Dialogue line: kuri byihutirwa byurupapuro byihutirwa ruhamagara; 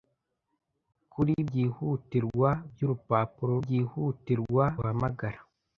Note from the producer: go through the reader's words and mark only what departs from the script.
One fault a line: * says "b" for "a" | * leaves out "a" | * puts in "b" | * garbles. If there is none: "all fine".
all fine